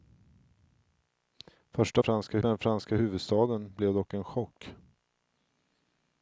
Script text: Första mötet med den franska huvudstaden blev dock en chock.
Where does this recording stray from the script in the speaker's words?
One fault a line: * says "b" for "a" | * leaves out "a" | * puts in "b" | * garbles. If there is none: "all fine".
* says "franska" for "mötet"